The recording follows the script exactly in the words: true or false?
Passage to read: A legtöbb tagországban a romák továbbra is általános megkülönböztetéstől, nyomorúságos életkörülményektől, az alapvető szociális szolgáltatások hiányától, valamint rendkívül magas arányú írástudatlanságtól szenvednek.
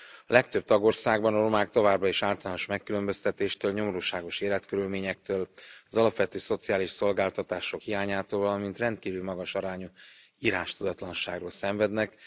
true